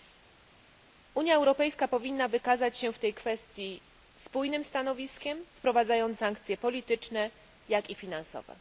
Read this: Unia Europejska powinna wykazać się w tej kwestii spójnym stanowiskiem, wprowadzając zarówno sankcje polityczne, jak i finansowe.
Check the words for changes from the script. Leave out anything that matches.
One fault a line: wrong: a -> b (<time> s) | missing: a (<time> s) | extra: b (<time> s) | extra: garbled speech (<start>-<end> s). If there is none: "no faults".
missing: zarówno (6.2 s)